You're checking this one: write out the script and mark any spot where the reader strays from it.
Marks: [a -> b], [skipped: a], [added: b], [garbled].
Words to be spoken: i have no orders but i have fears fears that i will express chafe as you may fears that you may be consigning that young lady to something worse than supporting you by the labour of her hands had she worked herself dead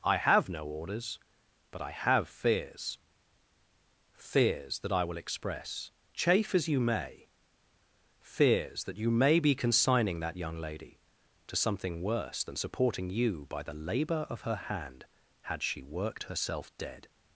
i have no orders but i have fears fears that i will express chafe as you may fears that you may be consigning that young lady to something worse than supporting you by the labour of her [hands -> hand] had she worked herself dead